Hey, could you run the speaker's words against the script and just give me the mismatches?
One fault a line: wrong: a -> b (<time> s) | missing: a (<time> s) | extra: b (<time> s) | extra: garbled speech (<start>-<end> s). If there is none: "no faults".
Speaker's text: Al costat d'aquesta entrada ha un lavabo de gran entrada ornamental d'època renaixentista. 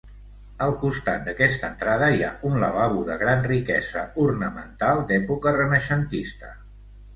extra: hi (2.1 s)
wrong: entrada -> riquesa (3.5 s)